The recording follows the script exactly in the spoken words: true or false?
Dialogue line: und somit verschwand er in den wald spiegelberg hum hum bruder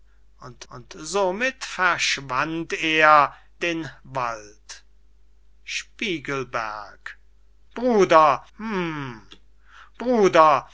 false